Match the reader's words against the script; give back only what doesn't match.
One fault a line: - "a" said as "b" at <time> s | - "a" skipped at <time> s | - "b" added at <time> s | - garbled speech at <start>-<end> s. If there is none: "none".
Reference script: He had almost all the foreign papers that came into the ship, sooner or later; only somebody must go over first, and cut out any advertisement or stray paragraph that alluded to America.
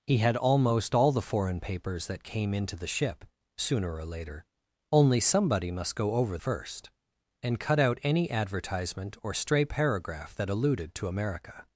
none